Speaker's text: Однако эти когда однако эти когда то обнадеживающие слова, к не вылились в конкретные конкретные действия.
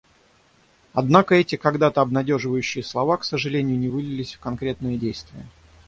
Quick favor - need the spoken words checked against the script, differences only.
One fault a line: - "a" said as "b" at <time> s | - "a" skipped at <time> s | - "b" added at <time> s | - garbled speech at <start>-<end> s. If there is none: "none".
- "однако эти когда" skipped at 1.9 s
- "сожалению" added at 3.2 s
- "конкретные" skipped at 5.0 s